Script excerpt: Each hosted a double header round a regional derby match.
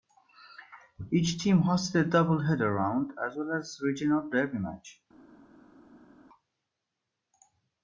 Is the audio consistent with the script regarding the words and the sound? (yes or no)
no